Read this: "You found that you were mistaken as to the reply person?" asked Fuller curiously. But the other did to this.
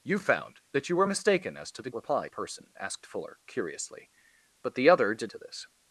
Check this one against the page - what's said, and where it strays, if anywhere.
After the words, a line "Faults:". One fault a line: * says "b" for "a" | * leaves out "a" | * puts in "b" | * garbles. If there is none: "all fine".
"You found that you were mistaken as to the reply person?" asked Fuller curiously. But the other did to this.
Faults:
all fine